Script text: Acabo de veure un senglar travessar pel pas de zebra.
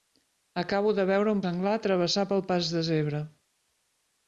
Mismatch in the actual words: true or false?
false